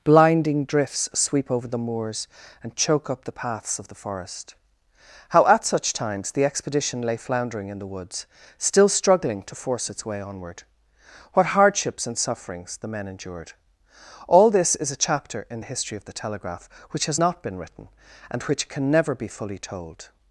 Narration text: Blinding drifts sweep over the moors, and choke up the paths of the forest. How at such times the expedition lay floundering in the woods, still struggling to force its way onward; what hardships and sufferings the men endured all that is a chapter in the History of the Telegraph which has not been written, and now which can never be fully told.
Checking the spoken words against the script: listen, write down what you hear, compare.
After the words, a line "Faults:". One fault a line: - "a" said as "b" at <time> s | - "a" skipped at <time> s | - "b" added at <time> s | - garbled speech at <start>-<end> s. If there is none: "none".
Blinding drifts sweep over the moors, and choke up the paths of the forest. How at such times the expedition lay floundering in the woods, still struggling to force its way onward; what hardships and sufferings the men endured all this is a chapter in the History of the Telegraph which has not been written, and which can never be fully told.
Faults:
- "that" said as "this" at 14.5 s
- "now" skipped at 18.4 s